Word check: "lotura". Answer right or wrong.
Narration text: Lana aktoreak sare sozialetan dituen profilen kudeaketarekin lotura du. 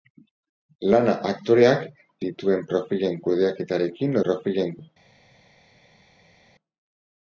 wrong